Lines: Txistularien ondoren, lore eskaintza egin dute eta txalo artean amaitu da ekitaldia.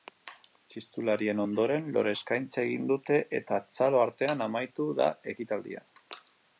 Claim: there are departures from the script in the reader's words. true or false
false